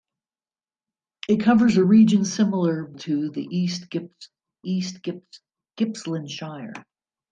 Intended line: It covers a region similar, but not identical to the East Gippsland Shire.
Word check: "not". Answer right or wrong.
wrong